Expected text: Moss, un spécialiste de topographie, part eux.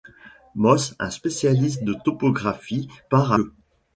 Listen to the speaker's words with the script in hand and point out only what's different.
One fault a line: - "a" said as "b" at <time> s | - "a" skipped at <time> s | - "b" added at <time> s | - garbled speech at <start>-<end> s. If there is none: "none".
none